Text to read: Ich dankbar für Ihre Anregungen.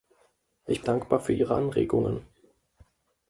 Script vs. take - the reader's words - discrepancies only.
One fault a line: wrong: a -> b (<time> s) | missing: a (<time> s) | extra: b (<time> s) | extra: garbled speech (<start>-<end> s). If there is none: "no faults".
no faults